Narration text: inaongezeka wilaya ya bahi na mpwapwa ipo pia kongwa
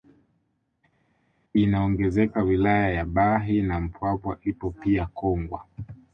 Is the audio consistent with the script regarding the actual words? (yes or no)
yes